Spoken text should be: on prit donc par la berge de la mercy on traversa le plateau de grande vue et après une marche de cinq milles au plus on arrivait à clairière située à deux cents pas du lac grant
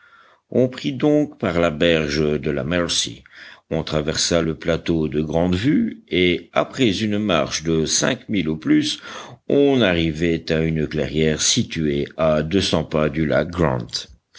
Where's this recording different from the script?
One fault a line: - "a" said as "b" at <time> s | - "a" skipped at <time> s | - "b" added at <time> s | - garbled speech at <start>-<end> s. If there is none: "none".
- "une" added at 10.6 s